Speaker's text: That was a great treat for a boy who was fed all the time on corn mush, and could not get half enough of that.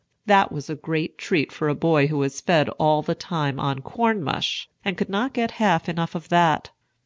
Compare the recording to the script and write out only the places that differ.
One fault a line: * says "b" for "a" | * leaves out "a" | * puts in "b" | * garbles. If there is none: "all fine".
all fine